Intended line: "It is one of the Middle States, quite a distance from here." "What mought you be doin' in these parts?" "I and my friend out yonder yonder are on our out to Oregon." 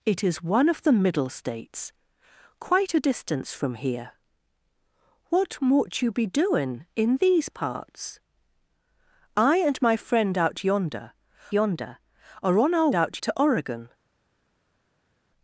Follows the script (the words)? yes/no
yes